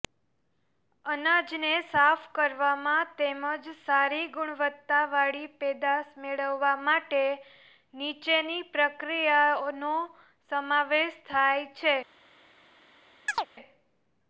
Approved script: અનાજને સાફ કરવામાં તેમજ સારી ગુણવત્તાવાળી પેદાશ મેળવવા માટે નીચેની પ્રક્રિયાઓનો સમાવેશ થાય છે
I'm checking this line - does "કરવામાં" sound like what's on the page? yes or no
yes